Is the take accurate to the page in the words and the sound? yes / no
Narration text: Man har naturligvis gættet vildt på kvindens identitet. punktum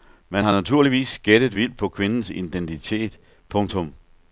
yes